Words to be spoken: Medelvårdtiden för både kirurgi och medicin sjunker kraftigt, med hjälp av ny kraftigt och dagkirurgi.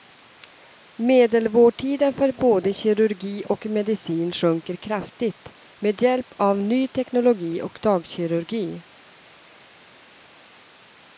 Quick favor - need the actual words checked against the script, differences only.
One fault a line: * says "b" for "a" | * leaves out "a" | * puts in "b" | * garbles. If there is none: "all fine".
* says "teknologi" for "kraftigt"